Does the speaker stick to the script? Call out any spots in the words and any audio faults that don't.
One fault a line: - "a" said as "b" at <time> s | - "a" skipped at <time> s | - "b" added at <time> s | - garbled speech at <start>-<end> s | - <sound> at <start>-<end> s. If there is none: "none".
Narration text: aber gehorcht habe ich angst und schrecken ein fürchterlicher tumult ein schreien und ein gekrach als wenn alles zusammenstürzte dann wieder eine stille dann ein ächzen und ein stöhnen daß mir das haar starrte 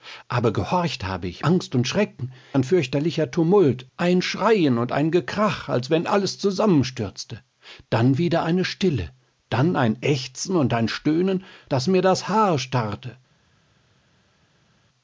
none